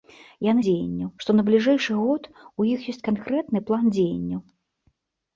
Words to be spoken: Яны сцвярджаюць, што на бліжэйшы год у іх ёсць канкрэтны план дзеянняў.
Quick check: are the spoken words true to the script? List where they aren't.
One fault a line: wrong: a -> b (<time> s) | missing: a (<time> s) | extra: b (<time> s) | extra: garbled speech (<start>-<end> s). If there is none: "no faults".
wrong: сцвярджаюць -> дзеянняў (0.6 s)